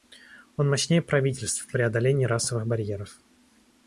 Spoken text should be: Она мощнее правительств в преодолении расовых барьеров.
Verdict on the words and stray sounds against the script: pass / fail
fail